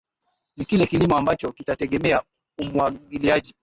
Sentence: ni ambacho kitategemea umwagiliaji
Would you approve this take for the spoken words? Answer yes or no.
no